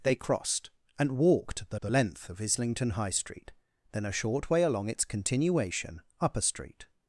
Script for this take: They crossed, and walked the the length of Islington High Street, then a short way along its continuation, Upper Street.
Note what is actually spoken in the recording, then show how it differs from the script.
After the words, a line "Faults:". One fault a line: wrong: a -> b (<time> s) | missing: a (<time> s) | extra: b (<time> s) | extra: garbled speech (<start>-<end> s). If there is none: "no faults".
They crossed, and walked the the length of Islington High Street, then a short way along its continuation, Upper Street.
Faults:
no faults